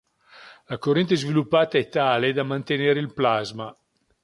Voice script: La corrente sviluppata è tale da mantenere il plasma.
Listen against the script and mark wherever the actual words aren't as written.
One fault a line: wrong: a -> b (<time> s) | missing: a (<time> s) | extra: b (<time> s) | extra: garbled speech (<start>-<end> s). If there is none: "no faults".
no faults